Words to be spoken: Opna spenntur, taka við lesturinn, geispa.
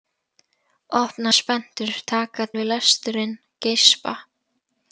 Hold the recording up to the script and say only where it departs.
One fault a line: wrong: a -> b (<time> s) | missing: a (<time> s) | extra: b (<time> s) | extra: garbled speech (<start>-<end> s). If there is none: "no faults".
no faults